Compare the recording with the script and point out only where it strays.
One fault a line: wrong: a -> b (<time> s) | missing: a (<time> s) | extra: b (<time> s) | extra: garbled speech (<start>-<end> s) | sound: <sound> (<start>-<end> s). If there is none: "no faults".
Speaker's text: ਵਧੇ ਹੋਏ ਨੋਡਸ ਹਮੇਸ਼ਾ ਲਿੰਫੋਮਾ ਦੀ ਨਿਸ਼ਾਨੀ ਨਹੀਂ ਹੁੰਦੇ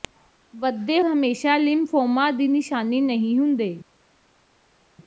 missing: ਹੋਏ ਨੋਡਸ (1.0 s)